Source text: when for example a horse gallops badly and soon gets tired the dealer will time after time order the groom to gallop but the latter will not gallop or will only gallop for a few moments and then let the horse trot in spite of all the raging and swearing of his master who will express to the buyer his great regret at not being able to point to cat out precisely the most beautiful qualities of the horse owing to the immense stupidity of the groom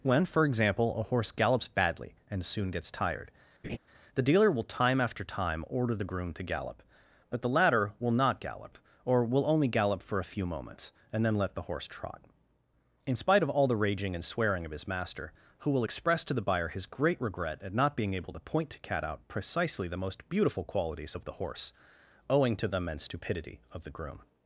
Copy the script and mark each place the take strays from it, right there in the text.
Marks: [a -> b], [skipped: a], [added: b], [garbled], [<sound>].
when for example a horse gallops badly and soon gets tired [laugh] the dealer will time after time order the groom to gallop but the latter will not gallop or will only gallop for a few moments and then let the horse trot in spite of all the raging and swearing of his master who will express to the buyer his great regret at not being able to point to cat out precisely the most beautiful qualities of the horse owing to the immense stupidity of the groom